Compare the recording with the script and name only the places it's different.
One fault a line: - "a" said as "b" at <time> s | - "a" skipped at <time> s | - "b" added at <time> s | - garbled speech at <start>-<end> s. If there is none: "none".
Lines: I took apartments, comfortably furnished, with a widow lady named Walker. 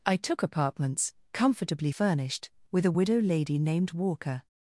none